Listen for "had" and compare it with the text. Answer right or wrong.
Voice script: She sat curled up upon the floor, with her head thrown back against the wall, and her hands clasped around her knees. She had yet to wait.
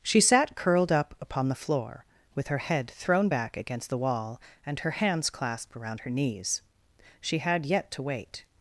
right